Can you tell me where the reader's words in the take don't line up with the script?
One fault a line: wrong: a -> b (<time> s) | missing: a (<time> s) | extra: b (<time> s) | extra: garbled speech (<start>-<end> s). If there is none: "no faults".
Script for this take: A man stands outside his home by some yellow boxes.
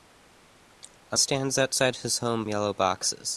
missing: man (1.2 s)
missing: by some (2.4 s)